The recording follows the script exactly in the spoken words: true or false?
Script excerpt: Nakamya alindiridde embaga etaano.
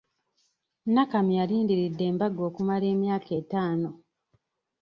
false